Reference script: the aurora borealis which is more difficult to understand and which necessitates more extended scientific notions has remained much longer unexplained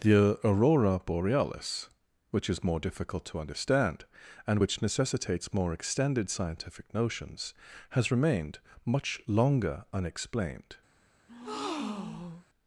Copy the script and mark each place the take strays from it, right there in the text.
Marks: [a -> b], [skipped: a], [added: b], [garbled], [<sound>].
the aurora borealis which is more difficult to understand and which necessitates more extended scientific notions has remained much longer unexplained [breath]